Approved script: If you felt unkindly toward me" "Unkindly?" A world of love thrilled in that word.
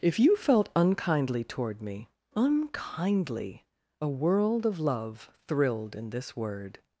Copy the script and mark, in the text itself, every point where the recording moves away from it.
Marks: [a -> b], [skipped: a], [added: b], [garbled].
If you felt unkindly toward me" "Unkindly?" A world of love thrilled in [that -> this] word.